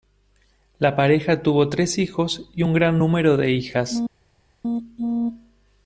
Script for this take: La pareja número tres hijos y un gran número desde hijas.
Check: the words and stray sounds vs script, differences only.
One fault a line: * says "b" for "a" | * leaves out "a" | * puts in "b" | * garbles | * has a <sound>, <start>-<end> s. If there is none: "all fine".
* says "tuvo" for "número"
* says "de" for "desde"